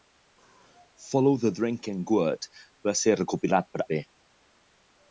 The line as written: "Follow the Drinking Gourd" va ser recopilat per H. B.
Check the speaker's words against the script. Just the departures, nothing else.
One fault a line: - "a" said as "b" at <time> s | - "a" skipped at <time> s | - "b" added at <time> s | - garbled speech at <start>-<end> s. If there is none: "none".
- "H" skipped at 3.8 s